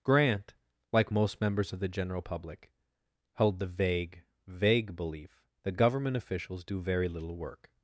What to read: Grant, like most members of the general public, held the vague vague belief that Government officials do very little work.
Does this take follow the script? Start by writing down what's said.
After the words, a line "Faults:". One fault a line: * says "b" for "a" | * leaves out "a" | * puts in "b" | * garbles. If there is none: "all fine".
Grant, like most members of the general public, held the vague vague belief that Government officials do very little work.
Faults:
all fine